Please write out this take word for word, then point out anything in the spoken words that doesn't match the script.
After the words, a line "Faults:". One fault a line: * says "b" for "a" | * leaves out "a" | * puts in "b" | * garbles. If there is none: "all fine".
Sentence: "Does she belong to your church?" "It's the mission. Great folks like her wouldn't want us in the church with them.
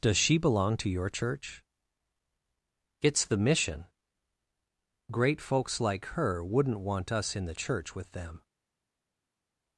"Does she belong to your church?" "It's the mission. Great folks like her wouldn't want us in the church with them.
Faults:
all fine